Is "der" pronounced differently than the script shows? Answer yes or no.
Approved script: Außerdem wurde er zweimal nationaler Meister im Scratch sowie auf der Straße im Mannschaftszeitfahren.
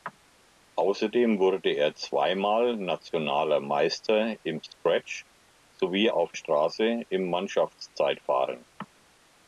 yes